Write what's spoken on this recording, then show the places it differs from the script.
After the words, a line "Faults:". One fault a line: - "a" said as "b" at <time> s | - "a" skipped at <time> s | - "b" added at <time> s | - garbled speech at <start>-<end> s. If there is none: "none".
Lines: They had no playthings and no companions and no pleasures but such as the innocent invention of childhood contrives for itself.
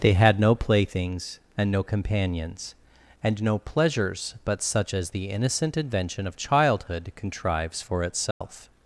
They had no playthings and no companions and no pleasures but such as the innocent invention of childhood contrives for itself.
Faults:
none